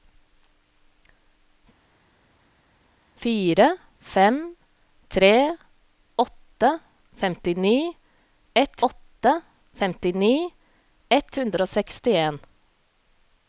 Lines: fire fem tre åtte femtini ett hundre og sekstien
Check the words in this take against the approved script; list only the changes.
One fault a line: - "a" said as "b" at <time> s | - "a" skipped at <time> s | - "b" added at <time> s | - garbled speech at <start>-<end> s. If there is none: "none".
- "åtte femtini ett" added at 8.9 s